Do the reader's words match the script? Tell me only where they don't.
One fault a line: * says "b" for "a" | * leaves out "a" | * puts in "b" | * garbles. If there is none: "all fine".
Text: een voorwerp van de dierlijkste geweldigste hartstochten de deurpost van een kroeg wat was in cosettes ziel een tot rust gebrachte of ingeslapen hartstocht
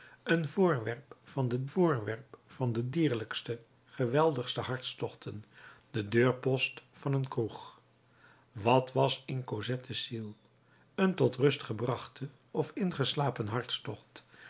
* puts in "voorwerp van de"